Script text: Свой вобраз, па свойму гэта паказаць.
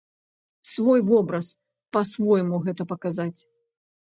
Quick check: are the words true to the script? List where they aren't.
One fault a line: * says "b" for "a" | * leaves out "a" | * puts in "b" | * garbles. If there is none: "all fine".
all fine